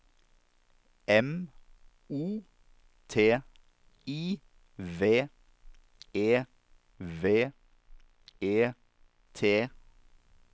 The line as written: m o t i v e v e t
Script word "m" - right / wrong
right